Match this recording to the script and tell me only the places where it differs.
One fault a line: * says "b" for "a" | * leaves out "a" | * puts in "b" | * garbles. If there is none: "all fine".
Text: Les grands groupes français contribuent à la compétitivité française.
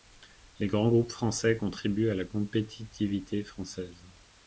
all fine